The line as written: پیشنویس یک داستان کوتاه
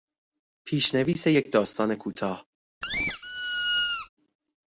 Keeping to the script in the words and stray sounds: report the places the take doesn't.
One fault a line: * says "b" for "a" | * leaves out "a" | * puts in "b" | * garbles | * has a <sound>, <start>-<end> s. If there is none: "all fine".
* has a squeak, 2.8-4.1 s